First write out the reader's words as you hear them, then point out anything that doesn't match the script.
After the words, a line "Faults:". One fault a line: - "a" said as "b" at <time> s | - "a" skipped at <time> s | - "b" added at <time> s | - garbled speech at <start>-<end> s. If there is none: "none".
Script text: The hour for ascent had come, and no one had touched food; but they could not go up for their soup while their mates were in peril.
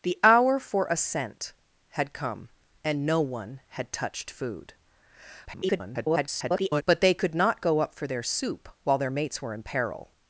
The hour for ascent had come, and no one had touched food; [garbled] but they could not go up for their soup while their mates were in peril.
Faults:
- garbled speech at 5.5-6.8 s